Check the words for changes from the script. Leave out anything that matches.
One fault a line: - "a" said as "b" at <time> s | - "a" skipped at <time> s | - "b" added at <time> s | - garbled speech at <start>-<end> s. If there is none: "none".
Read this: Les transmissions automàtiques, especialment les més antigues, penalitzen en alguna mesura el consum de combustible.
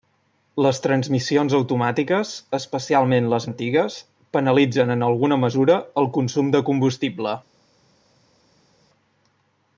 - "més" skipped at 3.5 s